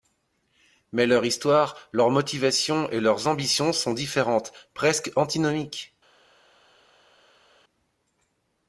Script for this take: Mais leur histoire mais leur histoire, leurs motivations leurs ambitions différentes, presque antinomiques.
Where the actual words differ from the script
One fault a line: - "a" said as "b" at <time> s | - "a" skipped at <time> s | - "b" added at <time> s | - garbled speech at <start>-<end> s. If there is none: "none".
- "mais leur histoire" skipped at 1.8 s
- "et" added at 2.9 s
- "sont" added at 3.7 s